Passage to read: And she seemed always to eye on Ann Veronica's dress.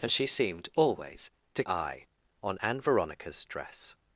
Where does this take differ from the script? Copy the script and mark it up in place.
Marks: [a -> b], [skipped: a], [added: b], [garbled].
And she seemed always to eye on Ann Veronica's dress.